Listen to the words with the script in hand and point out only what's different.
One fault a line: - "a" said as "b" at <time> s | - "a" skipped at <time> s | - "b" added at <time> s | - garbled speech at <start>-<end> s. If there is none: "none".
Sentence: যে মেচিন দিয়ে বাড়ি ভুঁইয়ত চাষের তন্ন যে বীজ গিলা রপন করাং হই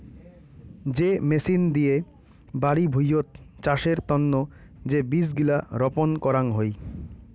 none